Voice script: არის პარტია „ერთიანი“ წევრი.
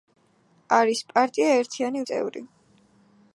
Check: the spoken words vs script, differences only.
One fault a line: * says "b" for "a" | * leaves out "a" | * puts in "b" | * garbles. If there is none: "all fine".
all fine